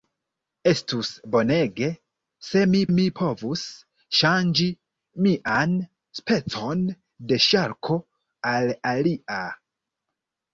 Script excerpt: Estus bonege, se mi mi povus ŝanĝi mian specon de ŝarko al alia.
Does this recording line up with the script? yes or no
yes